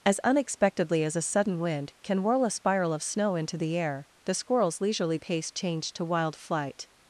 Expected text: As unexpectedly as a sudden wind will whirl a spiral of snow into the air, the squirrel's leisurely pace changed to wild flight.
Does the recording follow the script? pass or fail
fail